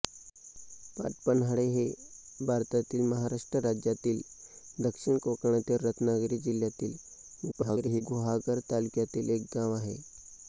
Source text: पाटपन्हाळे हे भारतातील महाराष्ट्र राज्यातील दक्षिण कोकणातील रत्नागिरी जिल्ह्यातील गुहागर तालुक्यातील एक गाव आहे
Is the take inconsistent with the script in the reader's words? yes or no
yes